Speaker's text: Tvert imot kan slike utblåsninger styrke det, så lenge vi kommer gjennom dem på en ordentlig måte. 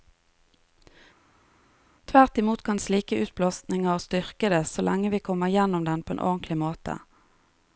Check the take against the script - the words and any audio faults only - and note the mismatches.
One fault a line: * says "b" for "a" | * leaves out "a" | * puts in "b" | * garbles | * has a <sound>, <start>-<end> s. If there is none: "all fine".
all fine